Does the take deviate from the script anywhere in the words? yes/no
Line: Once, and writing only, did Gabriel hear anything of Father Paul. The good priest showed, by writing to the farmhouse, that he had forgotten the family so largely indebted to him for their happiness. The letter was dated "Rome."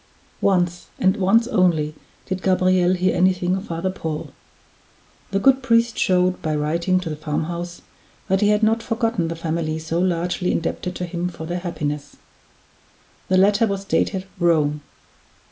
yes